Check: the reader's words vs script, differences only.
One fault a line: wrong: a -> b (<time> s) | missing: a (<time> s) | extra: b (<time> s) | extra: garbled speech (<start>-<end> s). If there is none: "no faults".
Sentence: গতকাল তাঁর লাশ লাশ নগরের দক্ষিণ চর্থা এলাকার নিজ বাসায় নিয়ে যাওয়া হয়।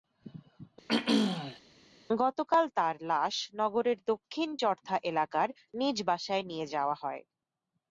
missing: লাশ (3.4 s)